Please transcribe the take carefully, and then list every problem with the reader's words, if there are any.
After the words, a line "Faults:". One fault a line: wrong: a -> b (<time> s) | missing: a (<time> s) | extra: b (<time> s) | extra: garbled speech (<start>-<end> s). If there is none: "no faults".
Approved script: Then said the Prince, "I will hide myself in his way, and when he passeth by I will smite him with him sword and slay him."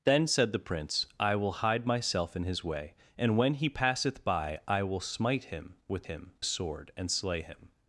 Then said the Prince, "I will hide myself in his way, and when he passeth by I will smite him with him sword and slay him."
Faults:
no faults